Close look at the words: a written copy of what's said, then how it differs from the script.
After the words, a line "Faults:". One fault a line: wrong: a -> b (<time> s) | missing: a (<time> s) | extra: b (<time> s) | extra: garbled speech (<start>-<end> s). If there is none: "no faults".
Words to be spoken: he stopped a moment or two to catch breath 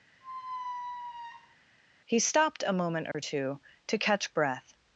he stopped a moment or two to catch breath
Faults:
no faults